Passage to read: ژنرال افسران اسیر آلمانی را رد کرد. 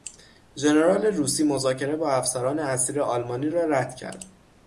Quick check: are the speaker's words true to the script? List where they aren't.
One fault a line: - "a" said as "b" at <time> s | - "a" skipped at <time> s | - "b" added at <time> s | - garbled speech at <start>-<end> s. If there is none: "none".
- "روسی مذاکره با" added at 1.1 s